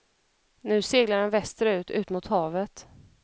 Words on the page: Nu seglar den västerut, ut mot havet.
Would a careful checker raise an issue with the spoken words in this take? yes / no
no